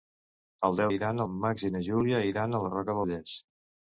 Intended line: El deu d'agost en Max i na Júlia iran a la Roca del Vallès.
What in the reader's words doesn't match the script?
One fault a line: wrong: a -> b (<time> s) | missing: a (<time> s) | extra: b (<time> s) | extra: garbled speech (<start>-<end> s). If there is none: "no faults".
wrong: d'agost -> iran (1.0 s)
missing: del (3.0 s)